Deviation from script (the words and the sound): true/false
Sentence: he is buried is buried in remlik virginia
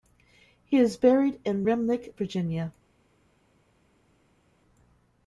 true